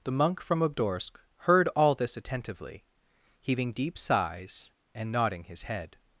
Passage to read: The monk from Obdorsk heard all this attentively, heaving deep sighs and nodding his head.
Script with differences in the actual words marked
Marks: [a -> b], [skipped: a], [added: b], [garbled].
The monk from Obdorsk heard all this attentively, heaving deep sighs and nodding his head.